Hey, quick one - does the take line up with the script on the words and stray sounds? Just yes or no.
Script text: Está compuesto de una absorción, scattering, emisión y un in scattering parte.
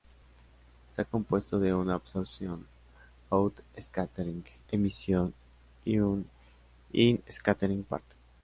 no